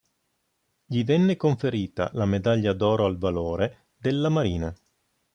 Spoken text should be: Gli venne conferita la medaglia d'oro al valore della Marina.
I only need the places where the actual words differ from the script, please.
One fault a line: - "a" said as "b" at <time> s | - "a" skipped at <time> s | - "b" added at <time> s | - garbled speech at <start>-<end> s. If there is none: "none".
none